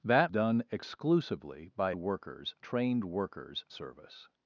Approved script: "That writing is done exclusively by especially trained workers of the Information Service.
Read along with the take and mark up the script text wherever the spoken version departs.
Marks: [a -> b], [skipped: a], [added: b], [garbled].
"That [skipped: writing is] done exclusively by [especially -> workers] trained workers [skipped: of the Information] Service.